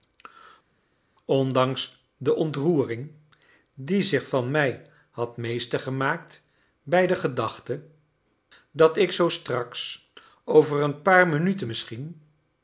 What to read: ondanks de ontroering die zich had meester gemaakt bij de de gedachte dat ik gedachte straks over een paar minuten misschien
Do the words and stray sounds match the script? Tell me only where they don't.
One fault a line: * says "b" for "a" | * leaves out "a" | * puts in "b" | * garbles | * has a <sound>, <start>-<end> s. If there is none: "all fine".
* puts in "van mij"
* leaves out "de"
* says "zoo" for "gedachte"